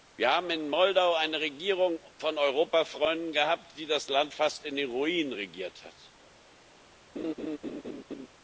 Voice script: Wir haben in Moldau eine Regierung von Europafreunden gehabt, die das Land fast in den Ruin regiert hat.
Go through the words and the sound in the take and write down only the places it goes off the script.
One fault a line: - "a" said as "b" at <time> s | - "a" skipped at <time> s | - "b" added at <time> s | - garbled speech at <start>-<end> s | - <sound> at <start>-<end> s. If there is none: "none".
- laugh at 7.2-8.3 s